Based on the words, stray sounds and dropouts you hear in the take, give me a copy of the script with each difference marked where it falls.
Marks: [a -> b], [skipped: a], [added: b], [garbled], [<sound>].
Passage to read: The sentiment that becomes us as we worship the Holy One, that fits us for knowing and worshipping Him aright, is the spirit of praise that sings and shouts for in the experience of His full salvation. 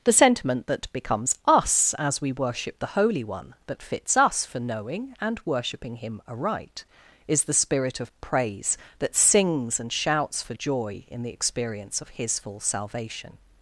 The sentiment that becomes us as we worship the Holy One, that fits us for knowing and worshipping Him aright, is the spirit of praise that sings and shouts for [added: joy] in the experience of His full salvation.